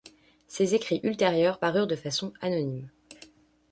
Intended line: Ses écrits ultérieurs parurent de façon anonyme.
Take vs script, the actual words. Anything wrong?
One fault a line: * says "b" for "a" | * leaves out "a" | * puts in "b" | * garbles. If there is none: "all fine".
all fine